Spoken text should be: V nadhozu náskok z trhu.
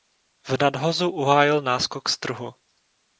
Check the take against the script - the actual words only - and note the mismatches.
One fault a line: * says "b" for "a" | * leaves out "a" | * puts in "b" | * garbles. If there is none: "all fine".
* puts in "uhájil"